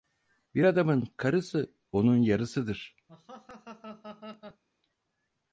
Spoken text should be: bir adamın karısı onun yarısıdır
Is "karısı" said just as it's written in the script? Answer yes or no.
yes